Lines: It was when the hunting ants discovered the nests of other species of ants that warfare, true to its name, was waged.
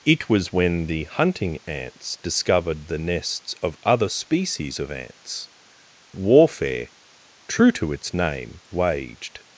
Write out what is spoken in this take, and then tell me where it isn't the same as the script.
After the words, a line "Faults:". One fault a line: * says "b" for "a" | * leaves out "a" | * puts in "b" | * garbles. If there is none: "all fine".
It was when the hunting ants discovered the nests of other species of ants warfare, true to its name, waged.
Faults:
* leaves out "that"
* leaves out "was"